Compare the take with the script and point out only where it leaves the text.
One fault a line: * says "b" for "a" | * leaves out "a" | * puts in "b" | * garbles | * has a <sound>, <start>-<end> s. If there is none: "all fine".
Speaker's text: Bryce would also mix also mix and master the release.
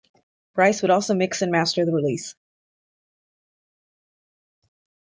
* leaves out "also mix"